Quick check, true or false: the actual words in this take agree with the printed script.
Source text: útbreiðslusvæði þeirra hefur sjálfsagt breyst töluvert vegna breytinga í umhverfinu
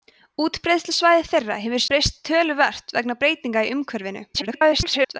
false